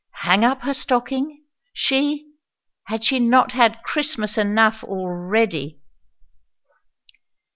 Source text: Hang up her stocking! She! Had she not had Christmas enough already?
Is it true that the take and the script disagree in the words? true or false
false